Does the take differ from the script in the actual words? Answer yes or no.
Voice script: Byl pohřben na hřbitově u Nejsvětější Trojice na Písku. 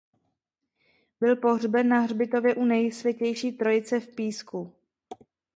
yes